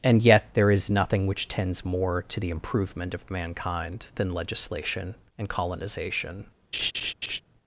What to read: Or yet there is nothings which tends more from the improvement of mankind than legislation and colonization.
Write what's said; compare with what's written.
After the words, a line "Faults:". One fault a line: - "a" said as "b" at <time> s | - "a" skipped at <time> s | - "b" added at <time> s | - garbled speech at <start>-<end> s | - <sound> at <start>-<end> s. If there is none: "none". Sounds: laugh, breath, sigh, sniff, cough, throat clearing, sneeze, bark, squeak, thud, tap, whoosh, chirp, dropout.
And yet there is nothing which tends more to the improvement of mankind than legislation and colonization.
Faults:
- "Or" said as "And" at 0.0 s
- "nothings" said as "nothing" at 0.9 s
- "from" said as "to" at 2.2 s
- laugh at 6.7-7.4 s